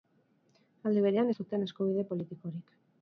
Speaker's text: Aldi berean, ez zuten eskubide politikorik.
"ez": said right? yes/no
yes